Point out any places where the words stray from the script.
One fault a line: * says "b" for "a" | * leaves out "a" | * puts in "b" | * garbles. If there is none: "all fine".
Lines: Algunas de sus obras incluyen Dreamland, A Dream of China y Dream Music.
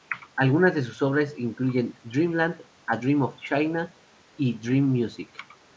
all fine